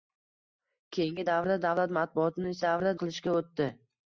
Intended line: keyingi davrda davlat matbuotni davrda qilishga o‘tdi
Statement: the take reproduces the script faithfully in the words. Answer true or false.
true